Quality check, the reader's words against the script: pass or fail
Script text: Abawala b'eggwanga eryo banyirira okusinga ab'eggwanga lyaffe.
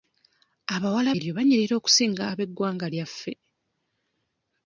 fail